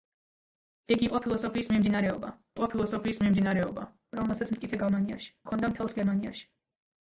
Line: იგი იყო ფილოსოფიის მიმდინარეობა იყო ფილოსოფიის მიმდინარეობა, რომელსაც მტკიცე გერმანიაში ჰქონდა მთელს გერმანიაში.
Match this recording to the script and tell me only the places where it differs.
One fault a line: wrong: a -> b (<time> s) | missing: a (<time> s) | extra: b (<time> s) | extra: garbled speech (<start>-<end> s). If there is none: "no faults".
no faults